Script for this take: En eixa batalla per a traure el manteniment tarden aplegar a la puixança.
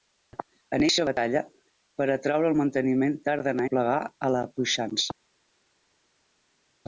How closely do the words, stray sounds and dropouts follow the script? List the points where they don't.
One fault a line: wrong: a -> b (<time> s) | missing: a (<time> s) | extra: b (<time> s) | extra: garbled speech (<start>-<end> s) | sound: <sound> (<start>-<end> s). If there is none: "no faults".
no faults